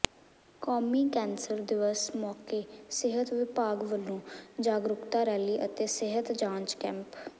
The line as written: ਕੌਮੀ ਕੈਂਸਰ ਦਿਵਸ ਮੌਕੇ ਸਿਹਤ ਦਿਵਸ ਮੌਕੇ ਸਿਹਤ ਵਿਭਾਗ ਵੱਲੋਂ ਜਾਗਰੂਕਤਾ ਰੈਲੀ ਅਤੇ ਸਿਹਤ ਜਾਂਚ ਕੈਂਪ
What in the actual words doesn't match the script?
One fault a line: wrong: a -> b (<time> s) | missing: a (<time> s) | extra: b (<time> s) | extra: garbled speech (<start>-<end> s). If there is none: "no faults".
missing: ਦਿਵਸ ਮੌਕੇ ਸਿਹਤ (3.3 s)